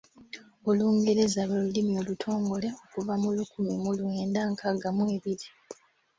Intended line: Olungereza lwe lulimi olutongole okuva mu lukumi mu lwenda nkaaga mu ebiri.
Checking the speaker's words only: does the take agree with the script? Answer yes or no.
yes